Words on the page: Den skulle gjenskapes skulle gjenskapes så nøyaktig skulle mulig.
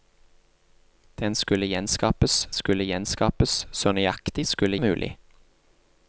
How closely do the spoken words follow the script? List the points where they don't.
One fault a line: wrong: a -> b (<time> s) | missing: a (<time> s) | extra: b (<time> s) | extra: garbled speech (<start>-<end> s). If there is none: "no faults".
no faults